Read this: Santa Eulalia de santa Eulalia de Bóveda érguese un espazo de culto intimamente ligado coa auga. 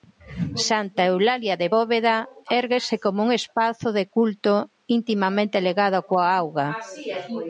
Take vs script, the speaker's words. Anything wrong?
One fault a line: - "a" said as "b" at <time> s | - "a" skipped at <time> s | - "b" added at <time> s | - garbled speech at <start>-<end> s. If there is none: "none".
- "santa Eulalia de" skipped at 1.7 s
- "como" added at 3.0 s